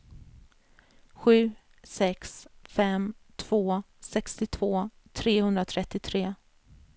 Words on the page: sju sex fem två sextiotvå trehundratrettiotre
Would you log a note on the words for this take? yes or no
no